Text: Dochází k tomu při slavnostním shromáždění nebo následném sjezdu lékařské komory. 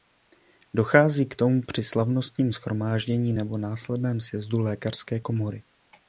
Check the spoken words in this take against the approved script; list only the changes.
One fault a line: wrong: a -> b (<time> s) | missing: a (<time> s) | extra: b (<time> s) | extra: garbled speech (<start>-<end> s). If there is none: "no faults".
no faults